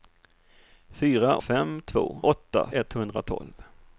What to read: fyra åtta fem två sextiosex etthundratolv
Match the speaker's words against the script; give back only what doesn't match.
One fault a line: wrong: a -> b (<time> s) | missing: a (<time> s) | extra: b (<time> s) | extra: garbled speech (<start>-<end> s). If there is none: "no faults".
missing: åtta (1.4 s)
wrong: sextiosex -> åtta (2.2 s)